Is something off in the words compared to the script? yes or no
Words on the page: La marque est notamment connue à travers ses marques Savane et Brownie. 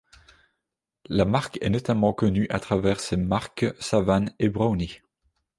no